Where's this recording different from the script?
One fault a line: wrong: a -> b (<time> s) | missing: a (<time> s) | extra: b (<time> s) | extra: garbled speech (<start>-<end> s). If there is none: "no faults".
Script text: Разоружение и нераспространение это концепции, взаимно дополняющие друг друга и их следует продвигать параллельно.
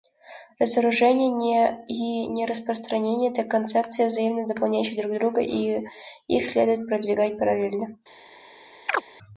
no faults